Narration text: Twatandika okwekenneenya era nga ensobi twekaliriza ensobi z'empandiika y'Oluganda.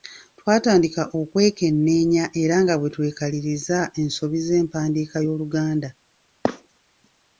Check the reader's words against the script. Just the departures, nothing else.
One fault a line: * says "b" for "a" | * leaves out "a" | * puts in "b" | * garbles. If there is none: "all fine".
* says "bwe" for "ensobi"